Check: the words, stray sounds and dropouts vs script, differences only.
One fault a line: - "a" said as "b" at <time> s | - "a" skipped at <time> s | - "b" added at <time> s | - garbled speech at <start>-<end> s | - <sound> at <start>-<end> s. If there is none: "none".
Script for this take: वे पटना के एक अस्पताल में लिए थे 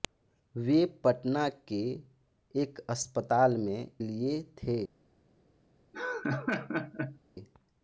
- laugh at 5.9-7.2 s